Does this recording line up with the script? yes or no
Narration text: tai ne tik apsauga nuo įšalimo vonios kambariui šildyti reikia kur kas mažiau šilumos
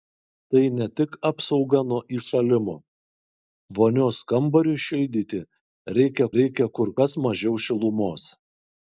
no